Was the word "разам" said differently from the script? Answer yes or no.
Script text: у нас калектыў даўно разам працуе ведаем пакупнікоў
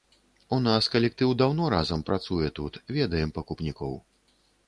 no